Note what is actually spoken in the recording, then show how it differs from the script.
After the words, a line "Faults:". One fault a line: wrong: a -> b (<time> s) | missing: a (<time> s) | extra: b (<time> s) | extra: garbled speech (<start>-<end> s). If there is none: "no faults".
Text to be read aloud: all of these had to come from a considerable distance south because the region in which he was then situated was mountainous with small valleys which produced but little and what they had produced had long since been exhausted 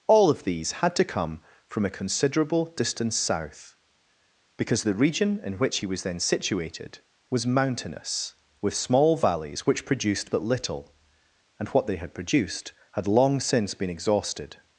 all of these had to come from a considerable distance south because the region in which he was then situated was mountainous with small valleys which produced but little and what they had produced had long since been exhausted
Faults:
no faults